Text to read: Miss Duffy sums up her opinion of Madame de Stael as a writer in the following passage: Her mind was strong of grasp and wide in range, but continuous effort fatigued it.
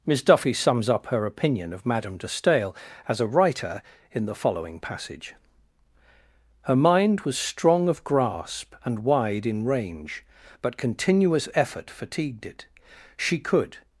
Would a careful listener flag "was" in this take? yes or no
no